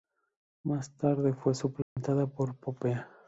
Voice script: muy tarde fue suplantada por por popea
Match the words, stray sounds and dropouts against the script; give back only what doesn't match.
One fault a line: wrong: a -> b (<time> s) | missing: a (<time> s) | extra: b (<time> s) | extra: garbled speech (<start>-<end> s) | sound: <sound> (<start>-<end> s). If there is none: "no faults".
wrong: muy -> más (0.6 s)
sound: dropout (1.8-2.0 s)
missing: por (2.5 s)